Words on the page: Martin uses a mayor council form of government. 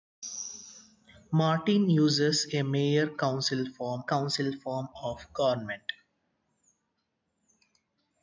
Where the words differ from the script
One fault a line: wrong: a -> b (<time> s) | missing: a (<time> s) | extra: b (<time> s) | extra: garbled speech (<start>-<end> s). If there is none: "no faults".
extra: council form (4.0 s)